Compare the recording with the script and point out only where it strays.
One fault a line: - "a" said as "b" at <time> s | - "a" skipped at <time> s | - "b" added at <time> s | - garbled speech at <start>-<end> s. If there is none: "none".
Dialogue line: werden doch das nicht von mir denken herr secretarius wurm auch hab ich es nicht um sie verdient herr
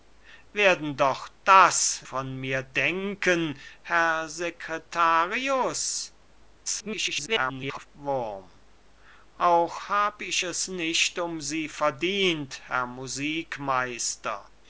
- "nicht" skipped at 2.0 s
- garbled speech at 6.7-7.9 s